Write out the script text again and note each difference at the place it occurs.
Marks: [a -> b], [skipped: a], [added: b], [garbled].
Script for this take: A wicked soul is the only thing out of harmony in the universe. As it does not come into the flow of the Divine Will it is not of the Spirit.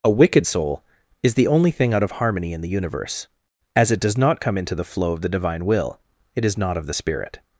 A wicked soul is the only thing out of harmony in the universe. As it does not come into the flow of the Divine Will it is not of the Spirit.